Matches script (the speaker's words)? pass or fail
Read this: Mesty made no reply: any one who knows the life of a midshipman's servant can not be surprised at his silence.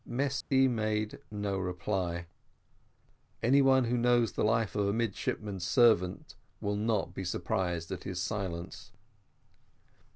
fail